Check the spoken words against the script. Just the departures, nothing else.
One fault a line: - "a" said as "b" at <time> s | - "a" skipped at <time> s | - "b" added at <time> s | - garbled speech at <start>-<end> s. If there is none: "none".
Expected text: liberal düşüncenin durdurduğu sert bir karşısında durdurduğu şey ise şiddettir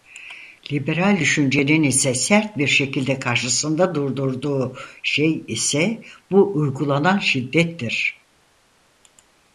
- "durdurduğu" said as "ise" at 1.8 s
- "şekilde" added at 2.7 s
- "bu uygulanan" added at 6.3 s